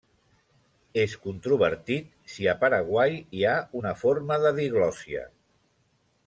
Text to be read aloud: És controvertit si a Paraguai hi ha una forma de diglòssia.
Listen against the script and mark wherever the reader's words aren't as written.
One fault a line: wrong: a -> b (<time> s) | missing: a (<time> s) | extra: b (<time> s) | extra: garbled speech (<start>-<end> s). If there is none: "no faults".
no faults